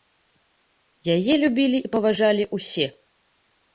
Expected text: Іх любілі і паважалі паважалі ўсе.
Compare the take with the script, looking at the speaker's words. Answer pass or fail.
fail